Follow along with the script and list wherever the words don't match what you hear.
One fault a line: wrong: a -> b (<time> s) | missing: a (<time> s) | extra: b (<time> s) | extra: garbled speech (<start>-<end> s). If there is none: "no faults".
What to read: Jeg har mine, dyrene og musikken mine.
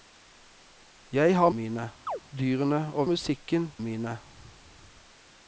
no faults